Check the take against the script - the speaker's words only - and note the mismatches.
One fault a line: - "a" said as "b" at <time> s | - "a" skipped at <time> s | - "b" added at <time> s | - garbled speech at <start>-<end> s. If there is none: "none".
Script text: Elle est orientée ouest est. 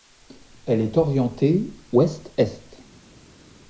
none